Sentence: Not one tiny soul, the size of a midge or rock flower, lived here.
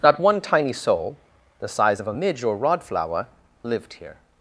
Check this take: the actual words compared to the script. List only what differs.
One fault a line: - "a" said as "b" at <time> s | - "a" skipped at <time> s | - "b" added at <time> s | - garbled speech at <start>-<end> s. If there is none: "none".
- "rock" said as "rod" at 2.5 s